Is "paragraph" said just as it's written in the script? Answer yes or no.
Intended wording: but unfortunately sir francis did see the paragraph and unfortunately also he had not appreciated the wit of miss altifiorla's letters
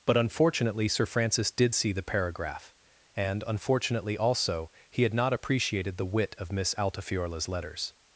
yes